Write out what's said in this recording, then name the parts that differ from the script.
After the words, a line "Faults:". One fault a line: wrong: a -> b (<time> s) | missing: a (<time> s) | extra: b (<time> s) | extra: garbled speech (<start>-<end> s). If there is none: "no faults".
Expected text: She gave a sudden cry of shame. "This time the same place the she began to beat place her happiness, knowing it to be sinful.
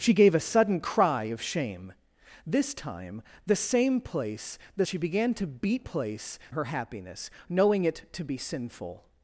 She gave a sudden cry of shame. "This time the same place the she began to beat place her happiness, knowing it to be sinful.
Faults:
no faults